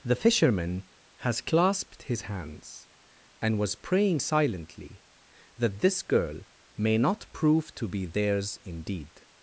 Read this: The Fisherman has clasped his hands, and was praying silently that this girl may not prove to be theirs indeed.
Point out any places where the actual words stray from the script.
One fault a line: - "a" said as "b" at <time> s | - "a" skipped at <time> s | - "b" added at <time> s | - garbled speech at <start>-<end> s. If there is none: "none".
none